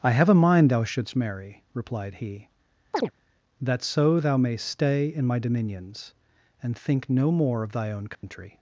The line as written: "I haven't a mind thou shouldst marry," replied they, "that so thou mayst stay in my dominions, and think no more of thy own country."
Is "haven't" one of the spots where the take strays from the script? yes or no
yes